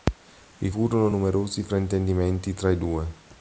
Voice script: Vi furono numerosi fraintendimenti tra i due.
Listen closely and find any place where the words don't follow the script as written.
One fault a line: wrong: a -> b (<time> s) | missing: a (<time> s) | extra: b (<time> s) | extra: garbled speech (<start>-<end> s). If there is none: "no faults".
no faults